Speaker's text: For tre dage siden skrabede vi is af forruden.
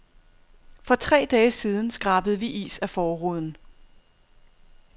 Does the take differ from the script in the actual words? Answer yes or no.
no